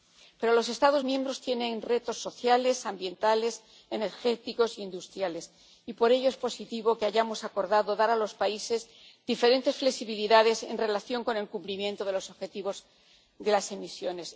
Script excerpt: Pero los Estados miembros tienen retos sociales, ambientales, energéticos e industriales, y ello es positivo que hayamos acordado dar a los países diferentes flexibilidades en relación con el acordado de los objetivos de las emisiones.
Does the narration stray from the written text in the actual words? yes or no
yes